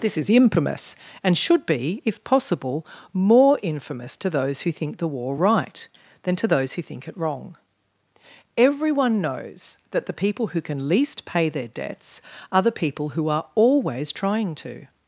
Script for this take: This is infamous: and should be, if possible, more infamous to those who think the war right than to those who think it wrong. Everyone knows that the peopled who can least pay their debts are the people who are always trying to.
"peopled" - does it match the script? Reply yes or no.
no